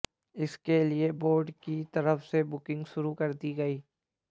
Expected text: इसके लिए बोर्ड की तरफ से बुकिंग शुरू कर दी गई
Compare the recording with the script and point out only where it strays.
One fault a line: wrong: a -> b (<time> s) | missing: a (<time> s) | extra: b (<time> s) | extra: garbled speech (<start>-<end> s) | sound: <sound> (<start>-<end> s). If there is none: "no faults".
no faults